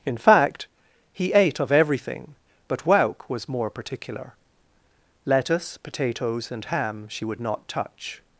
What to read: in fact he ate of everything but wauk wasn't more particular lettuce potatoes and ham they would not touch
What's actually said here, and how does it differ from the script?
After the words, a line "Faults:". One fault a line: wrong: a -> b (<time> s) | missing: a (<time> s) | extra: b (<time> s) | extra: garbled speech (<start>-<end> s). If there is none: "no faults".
in fact he ate of everything but wauk was more particular lettuce potatoes and ham she would not touch
Faults:
wrong: wasn't -> was (3.3 s)
wrong: they -> she (7.1 s)